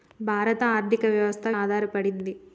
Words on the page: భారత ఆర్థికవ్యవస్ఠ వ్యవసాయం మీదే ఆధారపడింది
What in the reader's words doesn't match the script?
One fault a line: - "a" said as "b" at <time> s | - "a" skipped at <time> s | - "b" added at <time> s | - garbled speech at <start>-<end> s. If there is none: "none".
- "వ్యవసాయం మీదే" skipped at 1.5 s